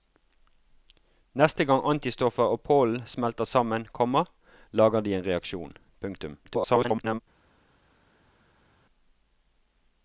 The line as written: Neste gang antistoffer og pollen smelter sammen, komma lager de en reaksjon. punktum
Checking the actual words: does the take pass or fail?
fail